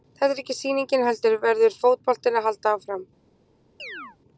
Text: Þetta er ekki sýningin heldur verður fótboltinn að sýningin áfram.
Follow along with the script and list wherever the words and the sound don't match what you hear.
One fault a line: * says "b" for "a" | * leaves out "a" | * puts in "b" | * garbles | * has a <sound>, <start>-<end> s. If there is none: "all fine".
* says "halda" for "sýningin"
* has a chirp, 3.8-4.2 s